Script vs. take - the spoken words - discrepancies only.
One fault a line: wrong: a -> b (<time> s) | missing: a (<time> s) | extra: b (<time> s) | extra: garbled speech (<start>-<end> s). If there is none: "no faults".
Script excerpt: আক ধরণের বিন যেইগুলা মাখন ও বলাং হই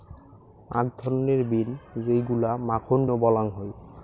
no faults